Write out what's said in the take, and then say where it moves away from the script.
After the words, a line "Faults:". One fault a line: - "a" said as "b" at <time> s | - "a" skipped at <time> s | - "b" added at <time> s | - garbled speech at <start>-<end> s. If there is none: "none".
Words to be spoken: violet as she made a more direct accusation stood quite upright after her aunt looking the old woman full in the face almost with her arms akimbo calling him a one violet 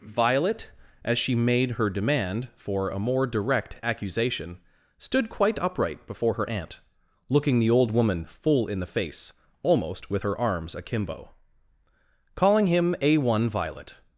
violet as she made her demand for a more direct accusation stood quite upright before her aunt looking the old woman full in the face almost with her arms akimbo calling him a one violet
Faults:
- "her demand for" added at 1.7 s
- "after" said as "before" at 6.1 s